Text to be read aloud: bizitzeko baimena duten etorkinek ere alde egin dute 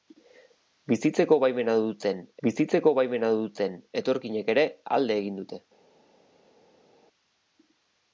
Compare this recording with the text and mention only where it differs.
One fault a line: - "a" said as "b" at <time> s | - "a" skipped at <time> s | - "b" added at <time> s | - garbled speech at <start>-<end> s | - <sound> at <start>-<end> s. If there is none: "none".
- "bizitzeko baimena duten" added at 2.5 s